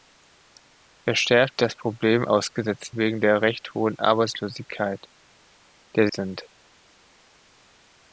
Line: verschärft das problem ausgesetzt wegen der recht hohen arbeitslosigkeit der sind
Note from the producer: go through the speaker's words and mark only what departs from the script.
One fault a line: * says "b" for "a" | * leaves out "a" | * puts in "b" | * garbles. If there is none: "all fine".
all fine